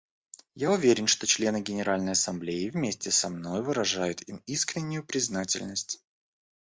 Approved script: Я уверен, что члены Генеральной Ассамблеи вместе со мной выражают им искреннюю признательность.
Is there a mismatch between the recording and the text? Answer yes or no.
no